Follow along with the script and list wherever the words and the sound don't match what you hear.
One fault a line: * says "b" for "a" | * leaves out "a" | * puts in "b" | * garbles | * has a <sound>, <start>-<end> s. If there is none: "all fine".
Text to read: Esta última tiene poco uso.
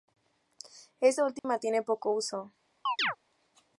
* has a dropout, 1.4-1.4 s
* has a chirp, 2.9-3.2 s